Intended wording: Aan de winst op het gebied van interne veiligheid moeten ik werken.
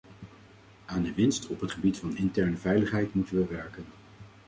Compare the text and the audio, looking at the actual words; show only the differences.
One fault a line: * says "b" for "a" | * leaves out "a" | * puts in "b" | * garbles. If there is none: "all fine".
* says "we" for "ik"